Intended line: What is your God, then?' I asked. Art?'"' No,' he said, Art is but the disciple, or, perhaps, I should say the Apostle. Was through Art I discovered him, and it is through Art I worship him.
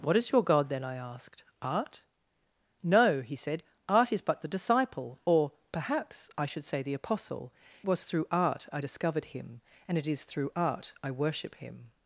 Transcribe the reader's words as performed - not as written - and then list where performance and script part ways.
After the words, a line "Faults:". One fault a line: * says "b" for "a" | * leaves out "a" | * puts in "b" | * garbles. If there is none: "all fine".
What is your God, then?' I asked. Art?'"' No,' he said, Art is but the disciple, or, perhaps, I should say the Apostle. Was through Art I discovered him, and it is through Art I worship him.
Faults:
all fine